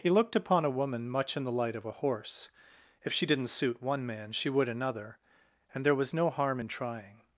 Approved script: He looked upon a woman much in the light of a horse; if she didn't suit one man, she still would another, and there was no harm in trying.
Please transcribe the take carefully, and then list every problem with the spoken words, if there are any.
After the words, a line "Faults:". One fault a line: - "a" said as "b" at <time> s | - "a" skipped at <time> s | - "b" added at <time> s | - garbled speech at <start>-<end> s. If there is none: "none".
He looked upon a woman much in the light of a horse; if she didn't suit one man, she would another, and there was no harm in trying.
Faults:
- "still" skipped at 4.5 s